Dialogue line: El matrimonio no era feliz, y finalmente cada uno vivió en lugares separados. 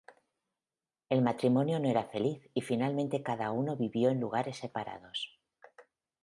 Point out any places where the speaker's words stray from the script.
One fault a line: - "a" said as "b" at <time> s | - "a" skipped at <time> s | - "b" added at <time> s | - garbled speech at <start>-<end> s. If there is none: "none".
none